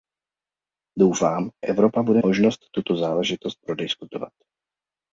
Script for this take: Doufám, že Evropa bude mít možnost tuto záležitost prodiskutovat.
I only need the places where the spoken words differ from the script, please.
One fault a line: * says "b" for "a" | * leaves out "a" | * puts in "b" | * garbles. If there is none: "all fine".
* leaves out "že"
* leaves out "mít"